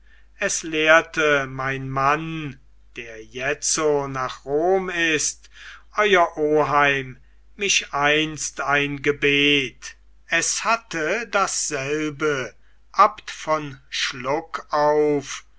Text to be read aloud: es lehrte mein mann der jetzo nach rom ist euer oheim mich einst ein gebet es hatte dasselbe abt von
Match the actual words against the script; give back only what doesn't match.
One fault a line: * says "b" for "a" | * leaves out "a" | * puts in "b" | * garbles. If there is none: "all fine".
all fine